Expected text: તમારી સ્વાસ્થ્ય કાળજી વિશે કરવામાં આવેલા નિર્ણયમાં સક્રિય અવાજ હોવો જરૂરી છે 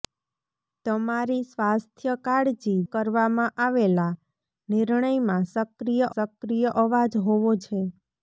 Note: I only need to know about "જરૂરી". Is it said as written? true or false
false